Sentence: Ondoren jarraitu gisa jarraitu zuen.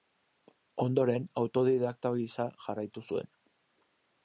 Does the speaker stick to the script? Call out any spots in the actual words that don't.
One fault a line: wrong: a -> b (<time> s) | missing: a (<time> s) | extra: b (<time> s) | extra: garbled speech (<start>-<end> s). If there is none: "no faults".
wrong: jarraitu -> autodidakta (1.4 s)